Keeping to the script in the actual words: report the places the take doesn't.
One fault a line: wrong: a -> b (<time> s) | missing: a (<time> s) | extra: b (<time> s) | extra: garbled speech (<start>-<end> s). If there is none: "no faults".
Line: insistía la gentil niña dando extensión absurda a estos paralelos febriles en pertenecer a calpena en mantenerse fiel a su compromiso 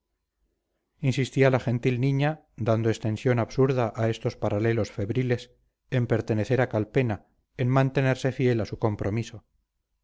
no faults